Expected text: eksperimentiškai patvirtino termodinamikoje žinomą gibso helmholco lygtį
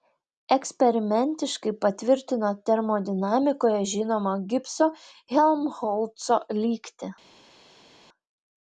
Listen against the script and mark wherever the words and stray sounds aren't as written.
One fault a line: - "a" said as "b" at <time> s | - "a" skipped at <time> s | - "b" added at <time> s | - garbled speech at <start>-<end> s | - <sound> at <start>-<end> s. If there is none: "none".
none